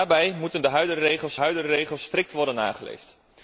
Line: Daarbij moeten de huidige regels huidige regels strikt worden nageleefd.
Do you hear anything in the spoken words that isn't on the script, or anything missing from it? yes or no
no